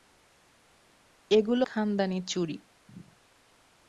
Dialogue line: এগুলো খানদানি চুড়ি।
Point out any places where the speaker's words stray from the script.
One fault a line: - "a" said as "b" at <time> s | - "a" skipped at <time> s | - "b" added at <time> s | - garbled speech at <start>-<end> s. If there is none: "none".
none